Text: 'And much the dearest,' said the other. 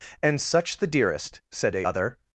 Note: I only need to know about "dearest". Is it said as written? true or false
true